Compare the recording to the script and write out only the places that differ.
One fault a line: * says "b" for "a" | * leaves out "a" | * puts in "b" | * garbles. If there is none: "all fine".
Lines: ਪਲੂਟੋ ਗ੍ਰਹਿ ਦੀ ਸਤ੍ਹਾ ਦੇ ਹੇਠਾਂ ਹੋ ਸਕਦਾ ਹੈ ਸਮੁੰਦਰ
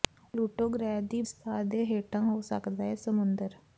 all fine